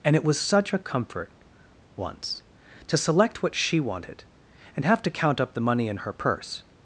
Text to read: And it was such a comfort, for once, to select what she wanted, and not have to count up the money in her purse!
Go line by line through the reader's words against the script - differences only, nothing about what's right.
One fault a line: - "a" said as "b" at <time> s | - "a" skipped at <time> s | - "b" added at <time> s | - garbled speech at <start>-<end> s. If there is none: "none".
- "for" skipped at 1.3 s
- "not" skipped at 4.8 s